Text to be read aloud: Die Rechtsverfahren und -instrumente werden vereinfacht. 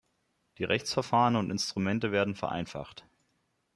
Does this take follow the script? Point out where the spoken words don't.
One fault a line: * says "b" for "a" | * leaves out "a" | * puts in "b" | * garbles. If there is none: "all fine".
all fine